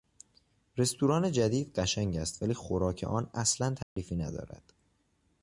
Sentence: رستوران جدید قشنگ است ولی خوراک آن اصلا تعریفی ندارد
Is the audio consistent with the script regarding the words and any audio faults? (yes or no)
no